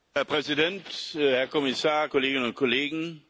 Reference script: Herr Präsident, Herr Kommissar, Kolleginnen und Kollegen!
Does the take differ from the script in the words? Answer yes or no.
no